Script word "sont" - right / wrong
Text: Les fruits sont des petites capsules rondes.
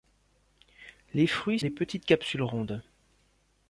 wrong